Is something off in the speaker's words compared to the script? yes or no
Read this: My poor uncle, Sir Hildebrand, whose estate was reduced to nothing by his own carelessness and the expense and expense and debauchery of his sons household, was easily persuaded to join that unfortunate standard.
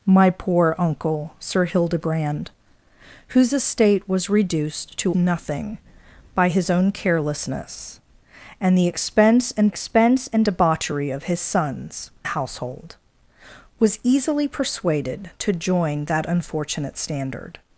no